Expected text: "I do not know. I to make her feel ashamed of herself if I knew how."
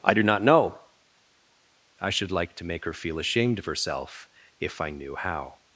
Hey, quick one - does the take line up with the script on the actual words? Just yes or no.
no